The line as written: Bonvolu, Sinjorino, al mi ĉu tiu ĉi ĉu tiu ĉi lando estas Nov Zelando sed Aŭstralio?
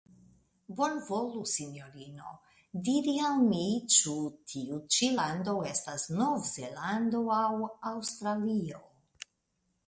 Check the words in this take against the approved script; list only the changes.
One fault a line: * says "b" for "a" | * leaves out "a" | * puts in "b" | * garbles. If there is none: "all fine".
* puts in "diri"
* leaves out "ĉu tiu ĉi"
* says "aŭ" for "sed"